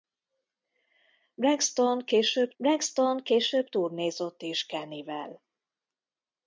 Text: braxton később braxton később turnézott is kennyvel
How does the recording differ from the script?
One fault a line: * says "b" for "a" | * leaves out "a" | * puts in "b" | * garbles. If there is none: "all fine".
all fine